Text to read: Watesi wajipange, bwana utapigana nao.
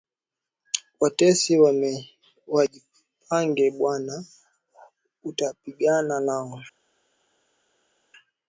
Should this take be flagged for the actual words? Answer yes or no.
no